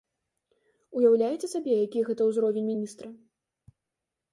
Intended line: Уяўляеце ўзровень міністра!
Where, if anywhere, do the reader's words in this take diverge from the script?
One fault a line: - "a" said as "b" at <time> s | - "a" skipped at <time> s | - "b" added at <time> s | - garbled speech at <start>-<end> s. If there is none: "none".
- "сабе які гэта" added at 1.5 s